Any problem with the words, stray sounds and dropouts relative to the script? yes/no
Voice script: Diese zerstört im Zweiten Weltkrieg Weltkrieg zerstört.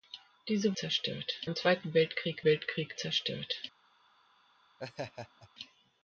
yes